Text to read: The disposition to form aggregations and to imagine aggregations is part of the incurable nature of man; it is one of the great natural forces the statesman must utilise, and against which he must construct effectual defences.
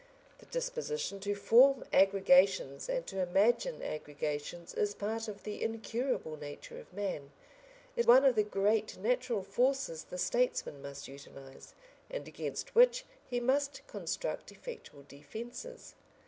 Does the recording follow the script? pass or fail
fail